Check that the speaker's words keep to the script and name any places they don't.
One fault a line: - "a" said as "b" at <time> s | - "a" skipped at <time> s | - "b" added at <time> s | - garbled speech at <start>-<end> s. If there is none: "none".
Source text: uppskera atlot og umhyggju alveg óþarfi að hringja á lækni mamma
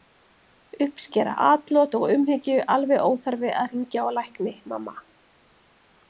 none